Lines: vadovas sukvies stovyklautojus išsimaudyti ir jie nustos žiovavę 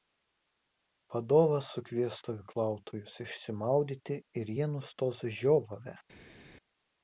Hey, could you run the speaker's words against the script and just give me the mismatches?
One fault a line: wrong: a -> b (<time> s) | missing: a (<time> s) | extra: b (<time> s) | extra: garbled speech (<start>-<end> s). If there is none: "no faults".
no faults